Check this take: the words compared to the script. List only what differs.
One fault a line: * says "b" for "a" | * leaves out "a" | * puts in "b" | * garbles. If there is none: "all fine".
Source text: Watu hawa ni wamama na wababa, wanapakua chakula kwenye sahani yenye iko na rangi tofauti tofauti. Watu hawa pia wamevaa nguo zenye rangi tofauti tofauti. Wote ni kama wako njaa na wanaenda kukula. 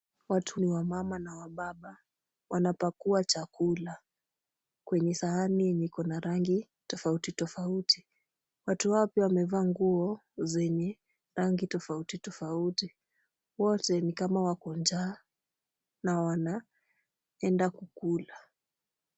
* leaves out "hawa"